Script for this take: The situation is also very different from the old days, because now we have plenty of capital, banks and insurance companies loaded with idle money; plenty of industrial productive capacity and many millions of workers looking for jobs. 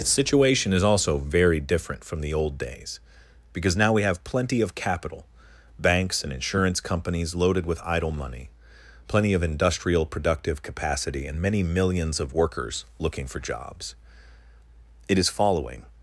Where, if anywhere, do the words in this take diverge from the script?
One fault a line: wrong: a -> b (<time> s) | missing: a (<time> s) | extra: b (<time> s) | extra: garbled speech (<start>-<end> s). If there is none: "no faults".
extra: It is following (15.1 s)